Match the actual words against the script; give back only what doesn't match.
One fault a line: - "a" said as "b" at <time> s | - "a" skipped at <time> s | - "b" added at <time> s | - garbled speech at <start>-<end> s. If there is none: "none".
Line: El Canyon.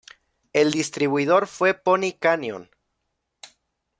- "distribuidor fue Pony" added at 0.7 s